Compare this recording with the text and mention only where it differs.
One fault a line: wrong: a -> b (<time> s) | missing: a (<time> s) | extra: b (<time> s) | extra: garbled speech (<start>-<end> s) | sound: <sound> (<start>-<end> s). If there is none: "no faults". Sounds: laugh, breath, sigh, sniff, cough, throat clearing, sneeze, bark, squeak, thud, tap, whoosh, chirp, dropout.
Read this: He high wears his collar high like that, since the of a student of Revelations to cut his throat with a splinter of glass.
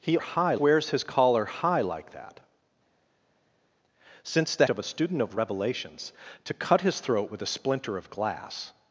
no faults